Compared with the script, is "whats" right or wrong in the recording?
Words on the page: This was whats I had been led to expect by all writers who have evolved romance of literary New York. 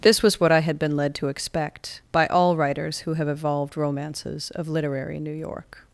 wrong